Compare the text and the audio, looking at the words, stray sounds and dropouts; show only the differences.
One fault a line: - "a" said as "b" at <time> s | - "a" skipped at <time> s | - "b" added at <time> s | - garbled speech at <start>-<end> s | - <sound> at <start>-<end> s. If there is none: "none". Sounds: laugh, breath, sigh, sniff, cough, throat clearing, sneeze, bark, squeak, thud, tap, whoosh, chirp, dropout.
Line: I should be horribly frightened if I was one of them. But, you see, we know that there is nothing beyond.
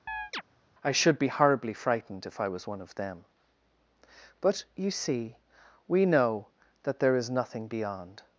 - chirp at 0.1-0.4 s